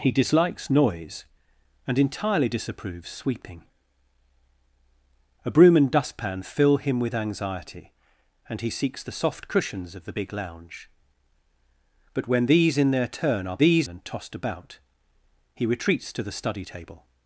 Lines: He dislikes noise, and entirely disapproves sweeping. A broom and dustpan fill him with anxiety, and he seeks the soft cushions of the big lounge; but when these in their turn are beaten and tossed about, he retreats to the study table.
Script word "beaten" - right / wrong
wrong